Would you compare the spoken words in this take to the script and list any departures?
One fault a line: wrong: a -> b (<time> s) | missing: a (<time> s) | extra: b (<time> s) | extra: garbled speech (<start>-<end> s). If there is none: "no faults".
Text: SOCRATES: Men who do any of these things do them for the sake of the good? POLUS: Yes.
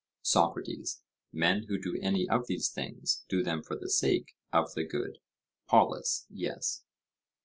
no faults